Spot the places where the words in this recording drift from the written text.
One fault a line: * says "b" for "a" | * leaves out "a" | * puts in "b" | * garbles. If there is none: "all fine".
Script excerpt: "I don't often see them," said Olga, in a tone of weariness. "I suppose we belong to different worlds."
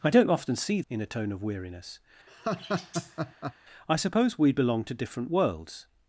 * leaves out "them said Olga"